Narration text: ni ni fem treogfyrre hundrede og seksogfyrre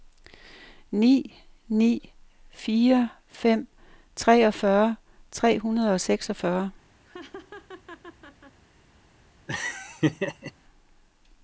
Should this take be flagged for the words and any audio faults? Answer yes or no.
yes